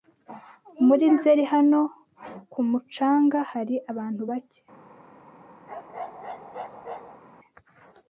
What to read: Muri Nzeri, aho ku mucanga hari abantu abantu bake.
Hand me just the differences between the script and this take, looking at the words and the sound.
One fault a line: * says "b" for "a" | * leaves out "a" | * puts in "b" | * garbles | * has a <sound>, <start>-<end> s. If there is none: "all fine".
* says "hano" for "aho"
* leaves out "abantu"
* has a bark, 5.7-7.2 s